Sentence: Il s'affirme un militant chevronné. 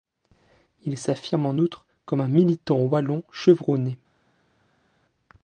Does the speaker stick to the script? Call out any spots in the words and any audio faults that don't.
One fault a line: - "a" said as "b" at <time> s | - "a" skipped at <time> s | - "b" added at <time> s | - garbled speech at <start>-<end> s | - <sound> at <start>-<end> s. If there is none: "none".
- "en outre comme" added at 1.4 s
- "wallon" added at 2.8 s